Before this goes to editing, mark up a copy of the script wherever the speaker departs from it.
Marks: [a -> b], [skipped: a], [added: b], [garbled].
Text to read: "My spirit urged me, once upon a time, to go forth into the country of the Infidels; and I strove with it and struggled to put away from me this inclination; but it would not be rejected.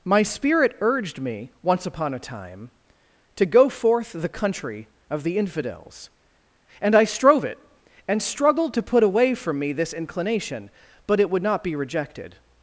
"My spirit urged me, once upon a time, to go forth [skipped: into] the country of the Infidels; and I strove [skipped: with] it and struggled to put away from me this inclination; but it would not be rejected.